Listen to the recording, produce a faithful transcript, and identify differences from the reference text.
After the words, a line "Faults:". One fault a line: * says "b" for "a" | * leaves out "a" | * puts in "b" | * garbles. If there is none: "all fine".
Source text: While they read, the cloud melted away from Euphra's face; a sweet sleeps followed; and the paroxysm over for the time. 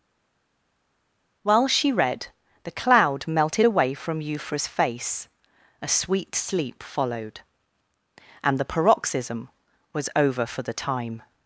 While she read, the cloud melted away from Euphra's face; a sweet sleep followed; and the paroxysm was over for the time.
Faults:
* says "she" for "they"
* says "sleep" for "sleeps"
* puts in "was"